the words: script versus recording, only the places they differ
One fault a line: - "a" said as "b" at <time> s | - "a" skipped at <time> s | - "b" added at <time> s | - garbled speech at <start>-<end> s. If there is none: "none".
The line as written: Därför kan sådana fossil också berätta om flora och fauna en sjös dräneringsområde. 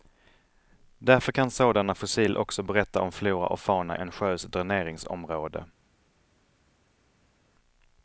none